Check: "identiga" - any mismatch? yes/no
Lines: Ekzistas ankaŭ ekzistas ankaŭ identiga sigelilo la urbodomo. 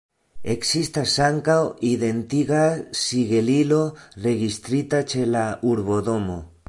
yes